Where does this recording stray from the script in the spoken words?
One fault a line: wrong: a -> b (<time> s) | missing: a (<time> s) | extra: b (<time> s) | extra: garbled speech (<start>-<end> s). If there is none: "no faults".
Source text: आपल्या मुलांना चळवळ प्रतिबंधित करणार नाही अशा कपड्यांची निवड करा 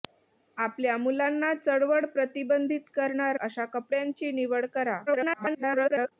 missing: नाही (3.4 s)
extra: garbled speech (5.1-6.1 s)